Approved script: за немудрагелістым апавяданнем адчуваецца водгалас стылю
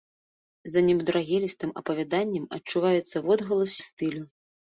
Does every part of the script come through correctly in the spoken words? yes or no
yes